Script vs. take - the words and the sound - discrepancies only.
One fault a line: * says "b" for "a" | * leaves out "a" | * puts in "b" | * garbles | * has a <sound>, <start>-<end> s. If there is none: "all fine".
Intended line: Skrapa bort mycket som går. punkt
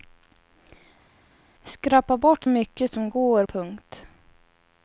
all fine